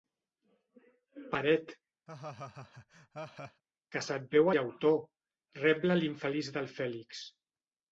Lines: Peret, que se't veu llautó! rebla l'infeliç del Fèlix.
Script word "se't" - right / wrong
right